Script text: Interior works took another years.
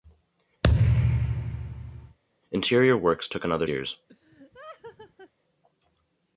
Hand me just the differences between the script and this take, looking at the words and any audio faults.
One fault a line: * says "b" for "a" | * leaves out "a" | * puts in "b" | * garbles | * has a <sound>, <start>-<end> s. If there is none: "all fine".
* has a thud, 0.6-2.2 s
* has a laugh, 4.1-5.3 s